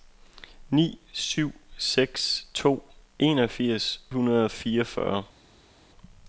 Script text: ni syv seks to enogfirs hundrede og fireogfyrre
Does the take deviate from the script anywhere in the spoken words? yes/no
no